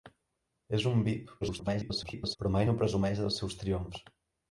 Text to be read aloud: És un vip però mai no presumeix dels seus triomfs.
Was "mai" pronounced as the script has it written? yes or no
yes